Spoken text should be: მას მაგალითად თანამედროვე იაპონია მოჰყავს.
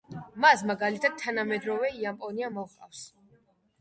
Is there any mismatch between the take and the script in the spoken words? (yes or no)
no